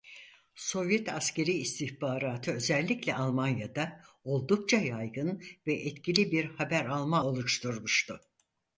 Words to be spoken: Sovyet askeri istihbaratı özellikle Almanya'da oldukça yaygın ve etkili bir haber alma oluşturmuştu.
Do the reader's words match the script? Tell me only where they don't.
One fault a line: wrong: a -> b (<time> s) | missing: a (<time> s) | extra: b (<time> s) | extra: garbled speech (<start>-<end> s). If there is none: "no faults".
no faults